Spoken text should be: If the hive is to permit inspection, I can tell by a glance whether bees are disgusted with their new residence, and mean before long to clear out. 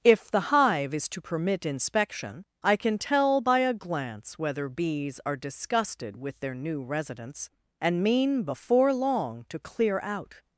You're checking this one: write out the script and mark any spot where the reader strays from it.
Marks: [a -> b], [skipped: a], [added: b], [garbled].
If the hive is to permit inspection, I can tell by a glance whether bees are disgusted with their new residence, and mean before long to clear out.